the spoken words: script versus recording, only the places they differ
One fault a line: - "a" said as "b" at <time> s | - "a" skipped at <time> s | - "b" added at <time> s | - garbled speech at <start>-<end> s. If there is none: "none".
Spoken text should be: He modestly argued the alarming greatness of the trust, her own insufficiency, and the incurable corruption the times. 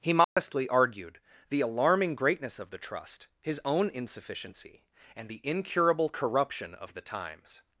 - "her" said as "his" at 3.4 s
- "of" added at 6.7 s